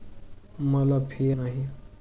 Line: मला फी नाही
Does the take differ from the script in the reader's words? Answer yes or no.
no